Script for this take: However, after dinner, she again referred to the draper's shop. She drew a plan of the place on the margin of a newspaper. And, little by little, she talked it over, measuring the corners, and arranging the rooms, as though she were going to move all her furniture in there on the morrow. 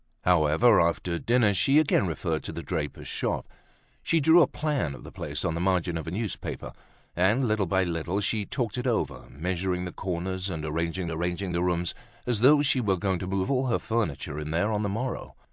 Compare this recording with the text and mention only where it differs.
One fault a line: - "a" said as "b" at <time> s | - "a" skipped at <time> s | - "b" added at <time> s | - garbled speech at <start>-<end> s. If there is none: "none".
- "arranging" added at 11.1 s